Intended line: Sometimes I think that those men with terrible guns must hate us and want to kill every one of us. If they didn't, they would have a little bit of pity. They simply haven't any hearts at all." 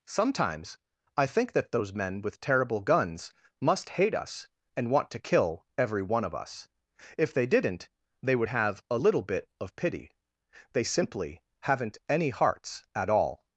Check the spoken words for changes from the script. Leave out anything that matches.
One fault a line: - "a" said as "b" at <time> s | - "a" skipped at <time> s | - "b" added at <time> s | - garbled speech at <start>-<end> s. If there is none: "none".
none